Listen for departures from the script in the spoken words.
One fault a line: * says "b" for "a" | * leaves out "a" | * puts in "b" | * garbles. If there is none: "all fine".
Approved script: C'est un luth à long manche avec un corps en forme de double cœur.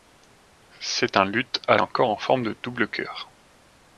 * leaves out "long manche avec"